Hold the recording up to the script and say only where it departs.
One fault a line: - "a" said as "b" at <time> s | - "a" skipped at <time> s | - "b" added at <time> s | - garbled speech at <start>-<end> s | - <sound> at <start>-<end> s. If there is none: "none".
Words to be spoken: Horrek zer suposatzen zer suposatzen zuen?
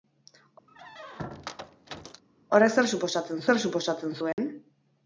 - squeak at 0.7-2.2 s
- dropout at 4.3-4.4 s